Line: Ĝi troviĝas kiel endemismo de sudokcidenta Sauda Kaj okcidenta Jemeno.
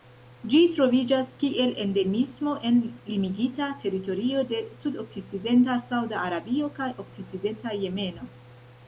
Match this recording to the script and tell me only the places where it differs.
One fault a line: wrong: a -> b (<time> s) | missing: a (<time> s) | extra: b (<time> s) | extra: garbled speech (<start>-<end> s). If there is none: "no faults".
extra: en limigita teritorio (2.7 s)
extra: Arabio (6.3 s)